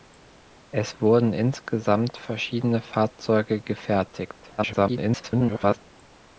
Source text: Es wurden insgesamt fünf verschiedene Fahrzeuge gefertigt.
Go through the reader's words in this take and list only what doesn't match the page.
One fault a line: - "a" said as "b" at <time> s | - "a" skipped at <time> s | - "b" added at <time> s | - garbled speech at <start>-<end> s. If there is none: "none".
- "fünf" skipped at 2.2 s
- garbled speech at 4.6-5.8 s